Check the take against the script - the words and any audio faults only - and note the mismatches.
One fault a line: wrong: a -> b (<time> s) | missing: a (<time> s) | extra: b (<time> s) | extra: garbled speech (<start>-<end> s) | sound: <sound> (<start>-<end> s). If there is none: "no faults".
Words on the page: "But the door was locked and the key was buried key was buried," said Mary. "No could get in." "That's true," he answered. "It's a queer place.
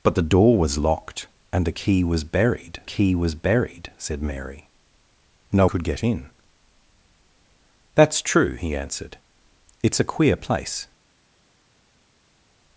no faults